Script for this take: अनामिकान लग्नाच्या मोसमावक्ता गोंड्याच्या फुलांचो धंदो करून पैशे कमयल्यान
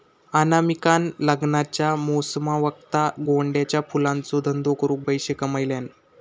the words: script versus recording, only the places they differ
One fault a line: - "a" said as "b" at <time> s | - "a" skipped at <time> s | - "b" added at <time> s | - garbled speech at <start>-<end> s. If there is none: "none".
none